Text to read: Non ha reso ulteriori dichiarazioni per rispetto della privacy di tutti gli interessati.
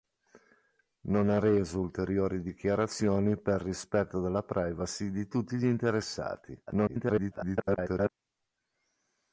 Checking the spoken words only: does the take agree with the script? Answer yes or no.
no